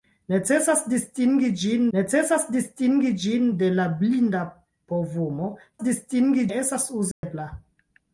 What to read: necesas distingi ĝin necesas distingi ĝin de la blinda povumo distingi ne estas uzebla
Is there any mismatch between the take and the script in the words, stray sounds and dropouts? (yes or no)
yes